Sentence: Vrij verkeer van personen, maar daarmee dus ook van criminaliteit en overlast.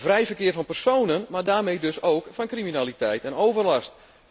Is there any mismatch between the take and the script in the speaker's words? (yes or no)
no